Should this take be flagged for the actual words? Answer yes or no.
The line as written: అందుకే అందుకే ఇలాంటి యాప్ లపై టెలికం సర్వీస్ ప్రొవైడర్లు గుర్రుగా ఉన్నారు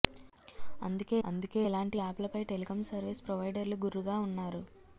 no